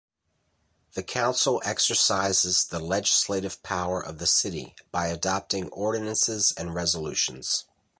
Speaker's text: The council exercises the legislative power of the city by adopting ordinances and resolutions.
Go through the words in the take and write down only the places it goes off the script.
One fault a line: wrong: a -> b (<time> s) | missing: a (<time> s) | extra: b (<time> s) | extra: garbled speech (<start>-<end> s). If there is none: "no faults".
no faults